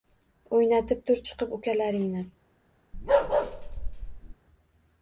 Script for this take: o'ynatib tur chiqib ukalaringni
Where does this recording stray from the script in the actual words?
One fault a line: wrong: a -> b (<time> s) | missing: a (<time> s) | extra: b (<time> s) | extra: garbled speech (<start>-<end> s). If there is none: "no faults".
no faults